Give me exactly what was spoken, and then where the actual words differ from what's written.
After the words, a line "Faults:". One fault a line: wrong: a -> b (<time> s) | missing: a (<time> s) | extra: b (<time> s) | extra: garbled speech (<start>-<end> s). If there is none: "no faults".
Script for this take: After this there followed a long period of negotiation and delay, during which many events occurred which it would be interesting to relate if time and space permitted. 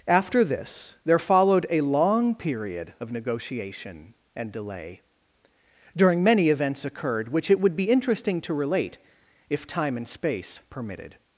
After this there followed a long period of negotiation and delay, during many events occurred which it would be interesting to relate if time and space permitted.
Faults:
missing: which (6.2 s)